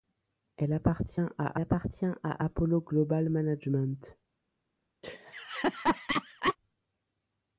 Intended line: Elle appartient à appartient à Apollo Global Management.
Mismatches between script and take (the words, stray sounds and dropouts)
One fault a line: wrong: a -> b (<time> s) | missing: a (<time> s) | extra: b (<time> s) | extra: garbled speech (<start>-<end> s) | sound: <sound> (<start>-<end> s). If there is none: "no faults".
sound: laugh (5.0-6.6 s)